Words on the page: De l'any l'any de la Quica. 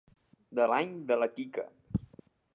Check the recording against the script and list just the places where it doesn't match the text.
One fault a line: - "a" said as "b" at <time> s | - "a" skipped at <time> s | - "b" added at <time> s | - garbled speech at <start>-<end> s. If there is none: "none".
- "l'any" skipped at 0.9 s